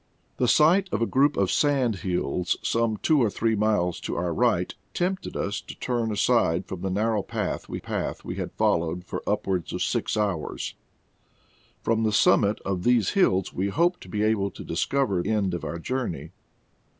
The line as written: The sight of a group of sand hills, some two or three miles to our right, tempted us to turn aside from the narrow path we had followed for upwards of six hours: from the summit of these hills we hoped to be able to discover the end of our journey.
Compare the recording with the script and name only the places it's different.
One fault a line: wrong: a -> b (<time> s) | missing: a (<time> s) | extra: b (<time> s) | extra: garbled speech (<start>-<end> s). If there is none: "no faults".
extra: path we (7.8 s)
missing: the (15.2 s)